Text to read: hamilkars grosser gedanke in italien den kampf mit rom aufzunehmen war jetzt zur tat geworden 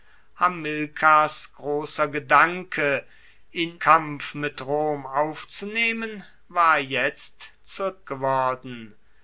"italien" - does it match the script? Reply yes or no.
no